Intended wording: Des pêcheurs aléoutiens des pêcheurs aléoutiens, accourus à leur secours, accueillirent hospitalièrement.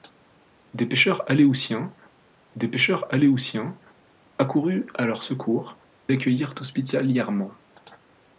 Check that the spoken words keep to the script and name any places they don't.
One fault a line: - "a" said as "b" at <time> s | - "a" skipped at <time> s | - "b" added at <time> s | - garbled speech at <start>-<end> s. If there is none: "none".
none